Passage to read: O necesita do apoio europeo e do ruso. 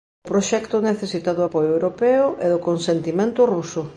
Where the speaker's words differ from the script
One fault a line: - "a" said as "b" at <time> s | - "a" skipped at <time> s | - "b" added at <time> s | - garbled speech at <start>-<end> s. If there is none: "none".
- "proxecto" added at 0.3 s
- "consentimento" added at 2.7 s